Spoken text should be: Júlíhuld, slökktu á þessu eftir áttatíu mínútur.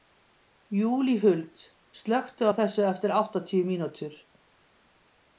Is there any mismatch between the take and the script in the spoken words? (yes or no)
no